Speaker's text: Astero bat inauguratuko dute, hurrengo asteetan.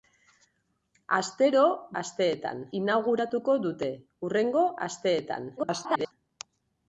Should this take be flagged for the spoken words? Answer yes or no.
yes